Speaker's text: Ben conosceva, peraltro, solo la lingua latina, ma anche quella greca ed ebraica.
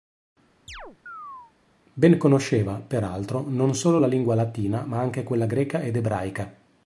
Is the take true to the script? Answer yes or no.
no